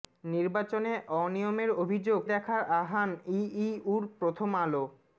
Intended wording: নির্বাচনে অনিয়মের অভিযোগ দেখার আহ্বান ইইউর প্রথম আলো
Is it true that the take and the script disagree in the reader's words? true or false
false